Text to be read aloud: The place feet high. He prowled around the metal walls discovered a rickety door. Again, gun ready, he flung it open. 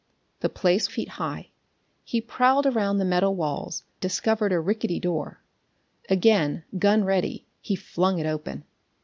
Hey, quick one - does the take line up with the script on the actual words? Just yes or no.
yes